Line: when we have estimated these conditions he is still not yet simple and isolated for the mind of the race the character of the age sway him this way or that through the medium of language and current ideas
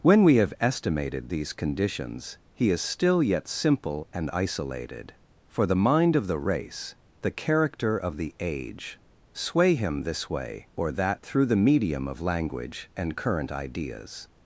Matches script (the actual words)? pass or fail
fail